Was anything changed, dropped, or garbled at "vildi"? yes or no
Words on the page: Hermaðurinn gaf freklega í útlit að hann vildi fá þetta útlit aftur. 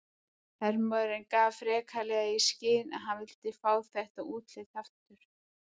no